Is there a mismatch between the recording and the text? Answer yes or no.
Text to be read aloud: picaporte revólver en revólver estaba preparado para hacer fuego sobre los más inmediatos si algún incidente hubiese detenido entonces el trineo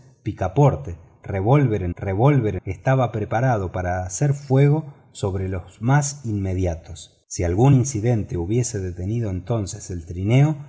no